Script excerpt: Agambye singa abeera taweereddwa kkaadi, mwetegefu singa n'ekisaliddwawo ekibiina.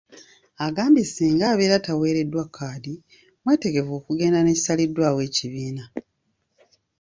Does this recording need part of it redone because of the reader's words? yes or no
yes